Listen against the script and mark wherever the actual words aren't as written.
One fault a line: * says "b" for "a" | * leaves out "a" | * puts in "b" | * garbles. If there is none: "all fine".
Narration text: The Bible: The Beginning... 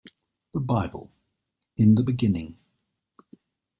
* puts in "In"